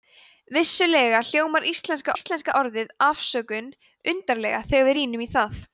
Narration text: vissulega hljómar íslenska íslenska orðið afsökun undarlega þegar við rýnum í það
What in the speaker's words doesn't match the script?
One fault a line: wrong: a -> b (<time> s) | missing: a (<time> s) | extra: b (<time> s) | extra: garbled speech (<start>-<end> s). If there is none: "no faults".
no faults